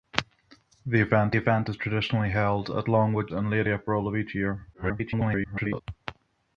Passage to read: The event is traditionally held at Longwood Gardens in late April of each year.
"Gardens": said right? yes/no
no